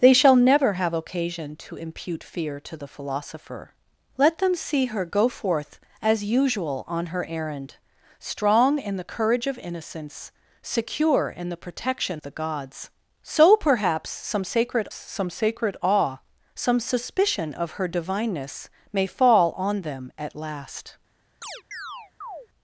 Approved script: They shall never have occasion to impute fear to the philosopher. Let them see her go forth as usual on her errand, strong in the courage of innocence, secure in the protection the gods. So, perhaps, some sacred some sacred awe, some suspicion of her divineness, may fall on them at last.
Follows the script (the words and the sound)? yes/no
no